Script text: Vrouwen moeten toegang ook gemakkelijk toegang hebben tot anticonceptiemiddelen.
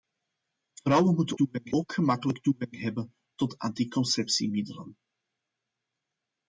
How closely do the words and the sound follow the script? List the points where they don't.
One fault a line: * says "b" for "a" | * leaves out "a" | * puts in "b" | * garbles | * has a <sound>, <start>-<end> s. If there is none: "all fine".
all fine